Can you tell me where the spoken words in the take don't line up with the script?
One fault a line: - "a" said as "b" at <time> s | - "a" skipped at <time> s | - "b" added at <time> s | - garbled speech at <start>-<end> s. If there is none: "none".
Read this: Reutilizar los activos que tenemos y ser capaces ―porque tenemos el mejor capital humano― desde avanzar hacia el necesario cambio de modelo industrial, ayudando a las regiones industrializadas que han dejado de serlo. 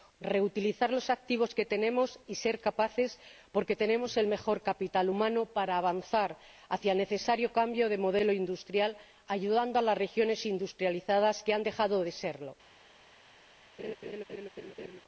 - "desde" said as "de" at 5.5 s